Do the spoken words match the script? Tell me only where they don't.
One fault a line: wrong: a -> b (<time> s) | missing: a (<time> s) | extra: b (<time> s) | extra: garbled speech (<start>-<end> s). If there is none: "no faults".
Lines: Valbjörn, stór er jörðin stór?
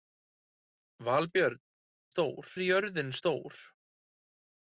no faults